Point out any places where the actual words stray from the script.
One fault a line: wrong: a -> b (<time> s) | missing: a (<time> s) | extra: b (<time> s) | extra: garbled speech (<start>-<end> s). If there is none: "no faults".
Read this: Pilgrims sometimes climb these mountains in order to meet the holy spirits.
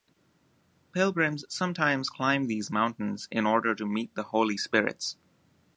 no faults